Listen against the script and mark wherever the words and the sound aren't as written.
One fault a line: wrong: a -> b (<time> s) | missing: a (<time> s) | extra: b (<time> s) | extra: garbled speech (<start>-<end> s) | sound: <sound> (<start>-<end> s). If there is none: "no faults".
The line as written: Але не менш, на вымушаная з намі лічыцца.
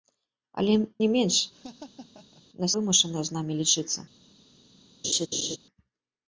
sound: laugh (1.5-2.4 s)
sound: laugh (5.0-5.6 s)